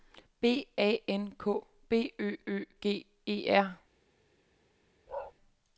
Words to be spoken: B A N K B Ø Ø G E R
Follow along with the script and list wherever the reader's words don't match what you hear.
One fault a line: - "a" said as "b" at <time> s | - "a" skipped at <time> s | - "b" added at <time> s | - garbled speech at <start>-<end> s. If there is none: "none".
none